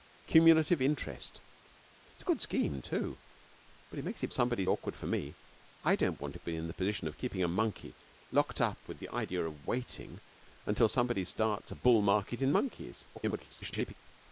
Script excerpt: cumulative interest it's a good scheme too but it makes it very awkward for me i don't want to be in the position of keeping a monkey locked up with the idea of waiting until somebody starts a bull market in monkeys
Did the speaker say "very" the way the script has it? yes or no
no